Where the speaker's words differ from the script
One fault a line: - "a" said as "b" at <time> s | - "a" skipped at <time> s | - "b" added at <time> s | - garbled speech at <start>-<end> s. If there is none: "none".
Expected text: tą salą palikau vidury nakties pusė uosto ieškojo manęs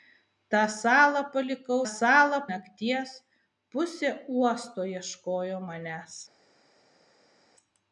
- "vidury" said as "salą" at 1.9 s